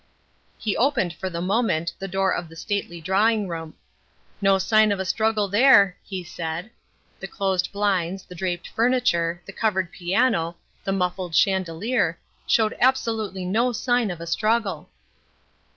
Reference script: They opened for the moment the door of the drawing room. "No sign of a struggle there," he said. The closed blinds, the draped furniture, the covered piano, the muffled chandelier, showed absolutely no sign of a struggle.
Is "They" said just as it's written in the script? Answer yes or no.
no